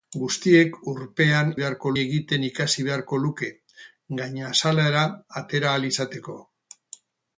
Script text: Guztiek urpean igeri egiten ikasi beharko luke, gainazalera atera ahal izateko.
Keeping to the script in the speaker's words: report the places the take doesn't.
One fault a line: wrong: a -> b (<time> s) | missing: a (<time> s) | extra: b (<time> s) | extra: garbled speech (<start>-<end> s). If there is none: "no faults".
wrong: igeri -> beharko (1.6 s)